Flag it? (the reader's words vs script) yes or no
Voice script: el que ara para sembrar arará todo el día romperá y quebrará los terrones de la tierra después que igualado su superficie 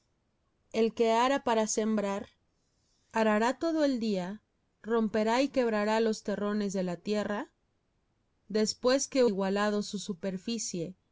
no